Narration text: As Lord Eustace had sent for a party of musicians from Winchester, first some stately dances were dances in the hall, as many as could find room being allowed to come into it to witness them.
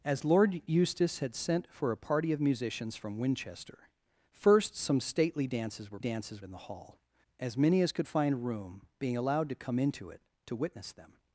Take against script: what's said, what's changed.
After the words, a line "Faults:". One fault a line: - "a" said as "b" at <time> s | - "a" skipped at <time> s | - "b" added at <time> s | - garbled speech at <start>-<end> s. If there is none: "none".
As Lord Eustace had sent for a party of musicians from Winchester, first some stately dances were dances in the hall, as many as could find room being allowed to come into it to witness them.
Faults:
none